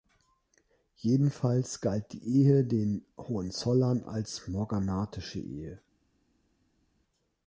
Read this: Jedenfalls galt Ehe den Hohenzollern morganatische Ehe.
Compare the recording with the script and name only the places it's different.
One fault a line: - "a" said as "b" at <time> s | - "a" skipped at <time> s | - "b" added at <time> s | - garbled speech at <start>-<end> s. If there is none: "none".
- "die" added at 2.1 s
- "als" added at 4.0 s